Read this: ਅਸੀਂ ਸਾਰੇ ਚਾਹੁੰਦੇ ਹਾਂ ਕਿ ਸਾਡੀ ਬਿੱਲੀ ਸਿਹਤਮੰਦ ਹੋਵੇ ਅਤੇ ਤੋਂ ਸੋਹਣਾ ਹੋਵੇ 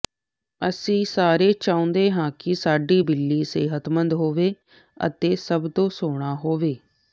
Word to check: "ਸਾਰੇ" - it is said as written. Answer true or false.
true